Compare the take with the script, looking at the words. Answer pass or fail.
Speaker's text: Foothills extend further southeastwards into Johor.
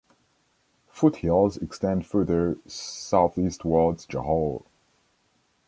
fail